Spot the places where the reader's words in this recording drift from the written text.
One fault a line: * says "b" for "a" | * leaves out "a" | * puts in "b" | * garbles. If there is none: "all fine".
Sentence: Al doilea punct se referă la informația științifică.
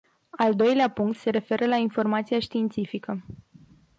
all fine